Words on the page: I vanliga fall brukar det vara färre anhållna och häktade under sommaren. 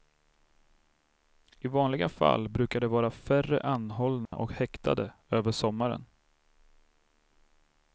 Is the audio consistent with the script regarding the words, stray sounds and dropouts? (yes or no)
no